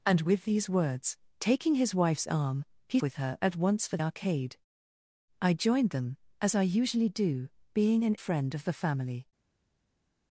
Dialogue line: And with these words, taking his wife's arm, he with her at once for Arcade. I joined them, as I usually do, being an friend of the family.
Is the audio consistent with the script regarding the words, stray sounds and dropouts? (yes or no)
yes